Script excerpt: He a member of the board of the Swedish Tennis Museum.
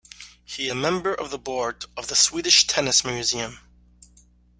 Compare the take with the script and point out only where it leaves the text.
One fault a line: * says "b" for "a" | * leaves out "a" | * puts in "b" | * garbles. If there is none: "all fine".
all fine